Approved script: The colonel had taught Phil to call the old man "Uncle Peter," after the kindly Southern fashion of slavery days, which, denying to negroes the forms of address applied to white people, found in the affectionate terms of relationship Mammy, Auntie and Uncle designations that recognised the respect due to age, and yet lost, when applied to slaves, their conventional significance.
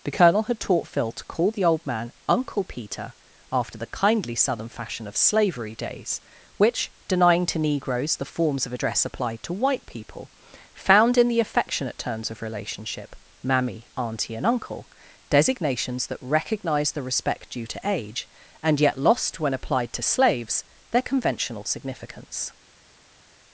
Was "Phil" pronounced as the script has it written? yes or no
yes